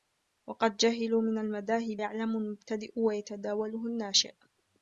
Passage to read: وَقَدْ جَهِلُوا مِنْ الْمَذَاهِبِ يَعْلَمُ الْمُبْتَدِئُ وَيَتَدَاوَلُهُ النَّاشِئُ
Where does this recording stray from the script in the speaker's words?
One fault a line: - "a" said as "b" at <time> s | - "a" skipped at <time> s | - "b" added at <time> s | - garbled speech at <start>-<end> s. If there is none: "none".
none